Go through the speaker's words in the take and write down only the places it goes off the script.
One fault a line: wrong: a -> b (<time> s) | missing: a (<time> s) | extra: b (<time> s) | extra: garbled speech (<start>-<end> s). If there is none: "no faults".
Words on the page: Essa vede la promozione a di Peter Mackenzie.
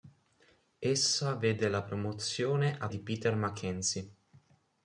no faults